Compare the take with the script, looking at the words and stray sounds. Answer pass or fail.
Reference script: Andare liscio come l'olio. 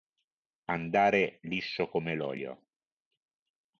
pass